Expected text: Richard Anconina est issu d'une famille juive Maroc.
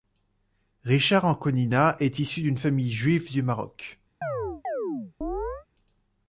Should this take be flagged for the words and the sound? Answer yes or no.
yes